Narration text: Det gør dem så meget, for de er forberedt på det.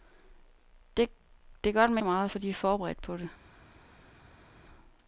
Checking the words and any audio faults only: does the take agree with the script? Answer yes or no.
yes